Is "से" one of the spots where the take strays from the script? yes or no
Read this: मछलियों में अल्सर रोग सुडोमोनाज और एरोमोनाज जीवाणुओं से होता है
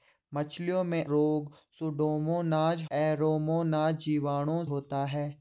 yes